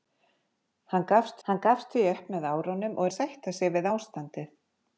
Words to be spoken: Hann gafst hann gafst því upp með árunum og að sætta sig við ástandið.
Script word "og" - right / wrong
right